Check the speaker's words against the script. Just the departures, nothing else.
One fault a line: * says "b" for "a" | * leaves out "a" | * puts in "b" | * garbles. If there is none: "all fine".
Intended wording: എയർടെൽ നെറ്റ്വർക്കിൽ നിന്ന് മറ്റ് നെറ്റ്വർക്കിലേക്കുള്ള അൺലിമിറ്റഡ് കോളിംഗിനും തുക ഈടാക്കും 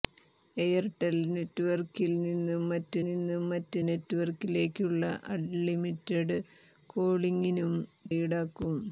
* puts in "നിന്ന് മറ്റ്"
* leaves out "തുക"